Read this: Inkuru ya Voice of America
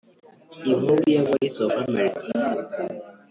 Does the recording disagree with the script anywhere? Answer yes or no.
no